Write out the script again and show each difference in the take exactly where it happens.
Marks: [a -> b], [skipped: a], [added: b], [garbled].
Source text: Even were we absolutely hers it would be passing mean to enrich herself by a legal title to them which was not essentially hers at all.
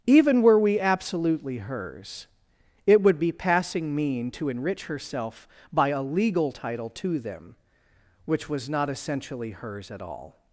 Even were we absolutely hers it would be passing mean to enrich herself by a legal title to them which was not essentially hers at all.